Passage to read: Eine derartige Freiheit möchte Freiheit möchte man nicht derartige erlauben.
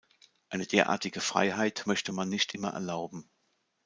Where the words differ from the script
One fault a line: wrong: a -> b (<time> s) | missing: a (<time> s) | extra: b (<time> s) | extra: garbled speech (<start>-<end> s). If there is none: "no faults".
missing: Freiheit möchte (2.1 s)
wrong: derartige -> immer (2.5 s)